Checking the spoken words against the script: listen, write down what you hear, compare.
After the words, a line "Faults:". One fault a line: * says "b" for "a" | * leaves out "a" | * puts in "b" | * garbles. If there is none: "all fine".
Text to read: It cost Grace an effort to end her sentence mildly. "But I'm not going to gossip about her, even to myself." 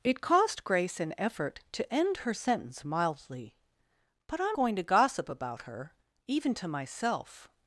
It cost Grace an effort to end her sentence mildly. "But I'm going to gossip about her, even to myself."
Faults:
* leaves out "not"